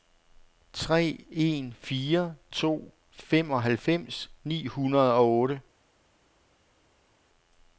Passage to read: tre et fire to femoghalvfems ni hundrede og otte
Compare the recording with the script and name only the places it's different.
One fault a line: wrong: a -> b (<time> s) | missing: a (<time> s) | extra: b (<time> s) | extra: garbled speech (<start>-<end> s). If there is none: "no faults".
wrong: et -> en (1.3 s)